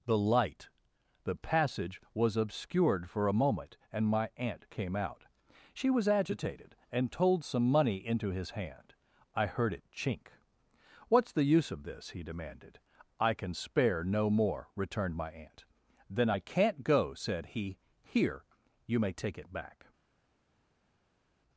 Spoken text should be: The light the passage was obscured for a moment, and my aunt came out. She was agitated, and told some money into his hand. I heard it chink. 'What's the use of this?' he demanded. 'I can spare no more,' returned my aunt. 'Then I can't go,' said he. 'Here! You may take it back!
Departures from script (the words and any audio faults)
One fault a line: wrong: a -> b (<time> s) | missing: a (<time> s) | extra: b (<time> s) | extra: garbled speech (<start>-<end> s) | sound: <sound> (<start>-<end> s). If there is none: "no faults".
no faults